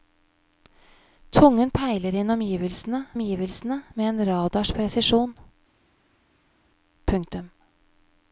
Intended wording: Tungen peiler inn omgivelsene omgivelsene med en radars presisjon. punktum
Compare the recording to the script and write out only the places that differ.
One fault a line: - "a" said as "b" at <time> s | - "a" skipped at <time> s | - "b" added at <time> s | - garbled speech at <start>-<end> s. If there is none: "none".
none